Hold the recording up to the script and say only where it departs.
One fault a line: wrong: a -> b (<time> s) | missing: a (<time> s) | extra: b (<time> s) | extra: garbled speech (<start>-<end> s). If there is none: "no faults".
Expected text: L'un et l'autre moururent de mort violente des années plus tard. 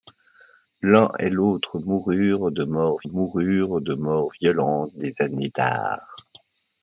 extra: moururent de mort (3.0 s)
missing: plus (5.5 s)